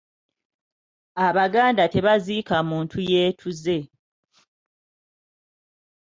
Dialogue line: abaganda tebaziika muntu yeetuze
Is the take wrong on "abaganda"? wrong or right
right